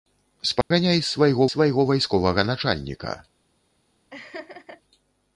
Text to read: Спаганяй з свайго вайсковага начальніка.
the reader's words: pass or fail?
fail